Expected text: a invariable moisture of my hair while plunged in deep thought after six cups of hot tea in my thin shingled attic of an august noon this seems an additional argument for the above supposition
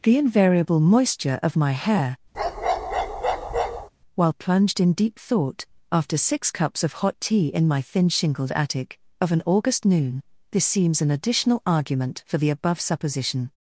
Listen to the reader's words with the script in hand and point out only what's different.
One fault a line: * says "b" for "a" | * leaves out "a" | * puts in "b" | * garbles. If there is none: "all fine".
* says "the" for "a"